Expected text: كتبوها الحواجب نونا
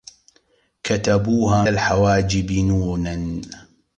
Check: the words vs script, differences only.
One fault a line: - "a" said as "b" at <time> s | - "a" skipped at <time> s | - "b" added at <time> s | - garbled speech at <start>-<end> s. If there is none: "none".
none